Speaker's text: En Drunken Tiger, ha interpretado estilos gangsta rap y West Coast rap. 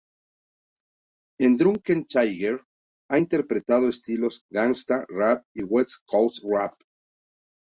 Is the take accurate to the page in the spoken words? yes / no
yes